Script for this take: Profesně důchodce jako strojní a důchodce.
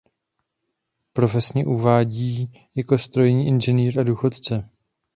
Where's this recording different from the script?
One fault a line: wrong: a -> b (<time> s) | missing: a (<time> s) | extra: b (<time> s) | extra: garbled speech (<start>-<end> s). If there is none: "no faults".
wrong: důchodce -> uvádí (1.6 s)
extra: inženýr (3.5 s)